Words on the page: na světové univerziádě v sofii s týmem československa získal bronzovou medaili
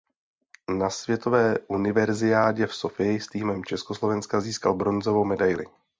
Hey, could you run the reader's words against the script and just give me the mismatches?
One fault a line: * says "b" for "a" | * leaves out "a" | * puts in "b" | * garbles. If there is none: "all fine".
all fine